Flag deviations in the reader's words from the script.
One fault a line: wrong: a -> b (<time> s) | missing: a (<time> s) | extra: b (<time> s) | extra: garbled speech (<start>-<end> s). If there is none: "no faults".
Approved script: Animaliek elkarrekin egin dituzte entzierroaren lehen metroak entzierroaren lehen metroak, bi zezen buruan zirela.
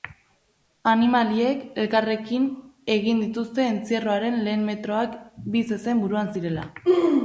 missing: entzierroaren lehen metroak (5.2 s)